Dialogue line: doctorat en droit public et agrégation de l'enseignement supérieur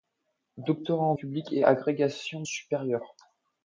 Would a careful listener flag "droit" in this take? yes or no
yes